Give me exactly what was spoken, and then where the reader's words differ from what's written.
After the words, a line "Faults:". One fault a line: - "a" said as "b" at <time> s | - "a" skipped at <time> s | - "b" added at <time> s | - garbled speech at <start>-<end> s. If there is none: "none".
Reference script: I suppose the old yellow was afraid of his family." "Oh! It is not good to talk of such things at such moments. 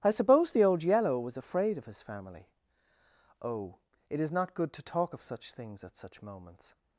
I suppose the old yellow was afraid of his family." "Oh! It is not good to talk of such things at such moments.
Faults:
none